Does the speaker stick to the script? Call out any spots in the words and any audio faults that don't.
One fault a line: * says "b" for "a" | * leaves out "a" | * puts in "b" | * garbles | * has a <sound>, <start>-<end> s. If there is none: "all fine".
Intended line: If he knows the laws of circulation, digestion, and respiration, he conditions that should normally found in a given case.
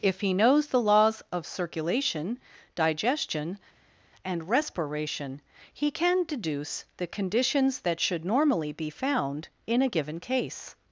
* puts in "can deduce the"
* puts in "be"